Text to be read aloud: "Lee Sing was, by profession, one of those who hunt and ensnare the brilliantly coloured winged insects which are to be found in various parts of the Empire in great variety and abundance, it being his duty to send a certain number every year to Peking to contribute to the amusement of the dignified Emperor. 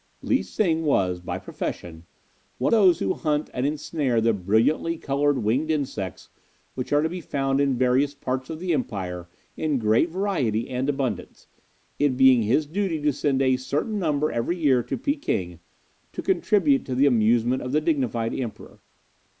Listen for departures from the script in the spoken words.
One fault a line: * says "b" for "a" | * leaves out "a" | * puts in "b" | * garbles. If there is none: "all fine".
* leaves out "of"